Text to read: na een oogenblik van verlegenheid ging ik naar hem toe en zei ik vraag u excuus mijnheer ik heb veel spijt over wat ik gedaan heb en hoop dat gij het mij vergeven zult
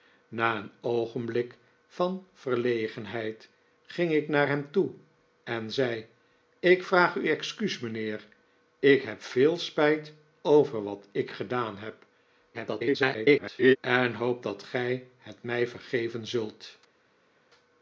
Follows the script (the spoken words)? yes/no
no